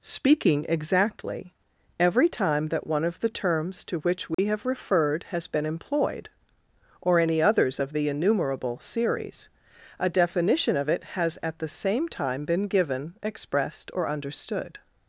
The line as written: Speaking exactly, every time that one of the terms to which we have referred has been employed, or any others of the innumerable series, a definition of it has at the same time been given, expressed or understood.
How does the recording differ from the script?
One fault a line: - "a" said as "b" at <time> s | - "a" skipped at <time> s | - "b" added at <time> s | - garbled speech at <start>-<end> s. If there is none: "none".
none